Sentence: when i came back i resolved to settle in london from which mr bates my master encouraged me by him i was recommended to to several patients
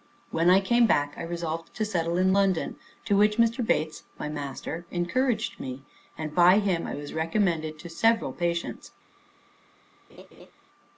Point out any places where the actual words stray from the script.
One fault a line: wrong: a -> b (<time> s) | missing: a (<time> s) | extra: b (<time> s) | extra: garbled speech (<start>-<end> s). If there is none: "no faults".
wrong: from -> to (3.0 s)
extra: and (6.2 s)
missing: to (7.9 s)